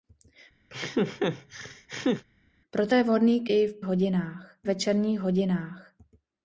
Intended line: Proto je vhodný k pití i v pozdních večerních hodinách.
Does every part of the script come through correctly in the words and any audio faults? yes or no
no